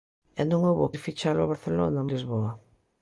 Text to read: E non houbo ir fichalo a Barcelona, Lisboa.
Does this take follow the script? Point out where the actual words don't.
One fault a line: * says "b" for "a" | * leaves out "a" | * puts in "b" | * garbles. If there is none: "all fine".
all fine